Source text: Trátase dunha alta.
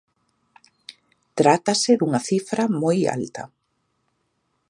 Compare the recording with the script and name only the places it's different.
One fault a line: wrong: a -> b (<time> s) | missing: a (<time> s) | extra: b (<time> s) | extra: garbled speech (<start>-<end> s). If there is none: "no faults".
extra: cifra moi (2.3 s)